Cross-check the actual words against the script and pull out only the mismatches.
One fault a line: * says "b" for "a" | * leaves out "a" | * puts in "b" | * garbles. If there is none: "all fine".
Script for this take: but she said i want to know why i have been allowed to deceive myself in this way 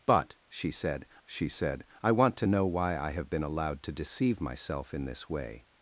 * puts in "she said"